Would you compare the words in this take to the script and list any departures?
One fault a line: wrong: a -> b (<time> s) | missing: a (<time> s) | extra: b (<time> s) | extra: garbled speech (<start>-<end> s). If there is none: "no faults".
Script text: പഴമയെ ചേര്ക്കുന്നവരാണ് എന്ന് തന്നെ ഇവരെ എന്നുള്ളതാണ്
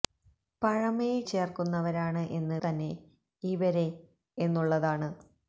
no faults